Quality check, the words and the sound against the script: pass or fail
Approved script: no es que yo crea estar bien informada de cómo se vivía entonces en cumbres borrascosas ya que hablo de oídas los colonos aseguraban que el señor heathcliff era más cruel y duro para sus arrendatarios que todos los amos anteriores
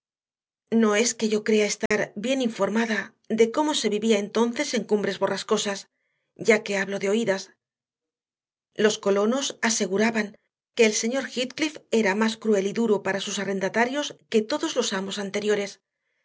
fail